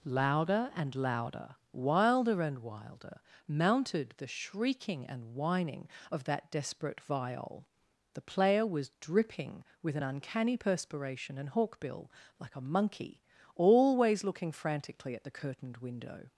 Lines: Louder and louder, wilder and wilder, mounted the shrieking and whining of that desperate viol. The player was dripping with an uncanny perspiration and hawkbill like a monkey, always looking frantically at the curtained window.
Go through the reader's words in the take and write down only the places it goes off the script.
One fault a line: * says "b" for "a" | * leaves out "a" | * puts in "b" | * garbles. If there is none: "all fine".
all fine